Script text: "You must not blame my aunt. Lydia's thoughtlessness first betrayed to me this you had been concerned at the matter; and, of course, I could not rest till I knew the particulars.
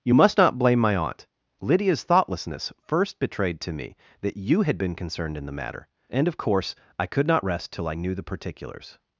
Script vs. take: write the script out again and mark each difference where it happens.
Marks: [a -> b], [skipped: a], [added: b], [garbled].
"You must not blame my aunt. Lydia's thoughtlessness first betrayed to me [this -> that] you had been concerned [at -> in] the matter; and, of course, I could not rest till I knew the particulars.